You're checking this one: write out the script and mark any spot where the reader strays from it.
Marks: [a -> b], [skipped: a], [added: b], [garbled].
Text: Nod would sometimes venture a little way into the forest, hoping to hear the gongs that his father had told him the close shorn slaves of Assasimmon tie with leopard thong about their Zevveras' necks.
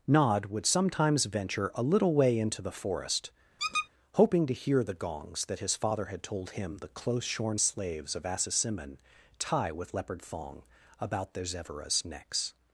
Nod would sometimes venture a little way into the forest, hoping to hear the gongs that his father had told him the close shorn slaves of Assasimmon tie with leopard thong about their Zevveras' necks.